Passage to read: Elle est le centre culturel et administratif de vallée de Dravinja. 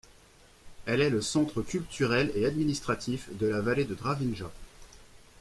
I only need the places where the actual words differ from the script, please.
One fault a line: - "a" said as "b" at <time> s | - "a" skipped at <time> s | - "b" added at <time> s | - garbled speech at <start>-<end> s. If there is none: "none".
- "la" added at 3.5 s